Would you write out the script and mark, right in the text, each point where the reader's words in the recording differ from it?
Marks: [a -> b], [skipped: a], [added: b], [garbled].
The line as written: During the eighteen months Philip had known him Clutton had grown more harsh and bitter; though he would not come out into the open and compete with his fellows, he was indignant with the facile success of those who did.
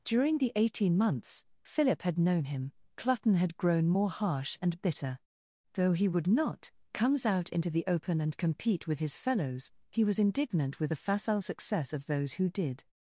During the eighteen months Philip had known him Clutton had grown more harsh and bitter; though he would not [come -> comes] out into the open and compete with his fellows, he was indignant with the facile success of those who did.